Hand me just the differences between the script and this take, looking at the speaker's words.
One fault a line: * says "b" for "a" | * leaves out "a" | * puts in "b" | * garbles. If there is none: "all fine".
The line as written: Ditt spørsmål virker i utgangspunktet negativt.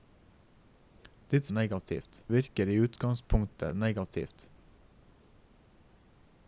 * says "negativt" for "spørsmål"